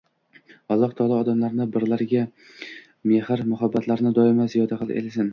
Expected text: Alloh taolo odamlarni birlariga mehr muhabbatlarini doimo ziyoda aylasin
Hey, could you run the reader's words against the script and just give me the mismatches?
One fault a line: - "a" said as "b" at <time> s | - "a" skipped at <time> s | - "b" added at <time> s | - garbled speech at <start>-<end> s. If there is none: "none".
none